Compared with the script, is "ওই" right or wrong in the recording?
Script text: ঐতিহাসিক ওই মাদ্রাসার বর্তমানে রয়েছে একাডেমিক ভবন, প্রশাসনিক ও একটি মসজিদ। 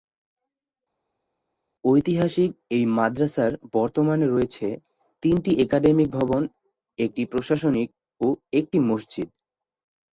wrong